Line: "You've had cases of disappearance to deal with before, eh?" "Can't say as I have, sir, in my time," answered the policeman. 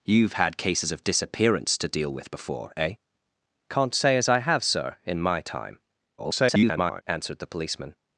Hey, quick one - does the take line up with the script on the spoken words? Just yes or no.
no